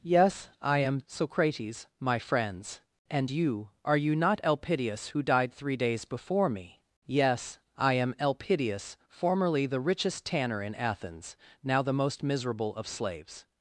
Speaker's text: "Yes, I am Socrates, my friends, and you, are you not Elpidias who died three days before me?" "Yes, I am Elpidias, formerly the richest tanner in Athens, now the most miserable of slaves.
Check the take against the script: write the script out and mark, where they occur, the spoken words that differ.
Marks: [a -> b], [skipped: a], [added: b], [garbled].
"Yes, I am Socrates, my friends, and you, are you not Elpidias who died three days before me?" "Yes, I am Elpidias, formerly the richest tanner in Athens, now the most miserable of slaves.